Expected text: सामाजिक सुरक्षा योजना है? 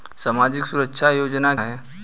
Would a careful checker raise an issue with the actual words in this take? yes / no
no